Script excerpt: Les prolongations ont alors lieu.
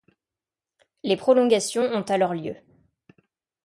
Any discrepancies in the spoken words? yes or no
no